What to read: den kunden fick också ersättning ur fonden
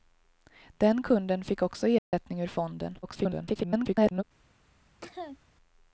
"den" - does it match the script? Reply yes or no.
yes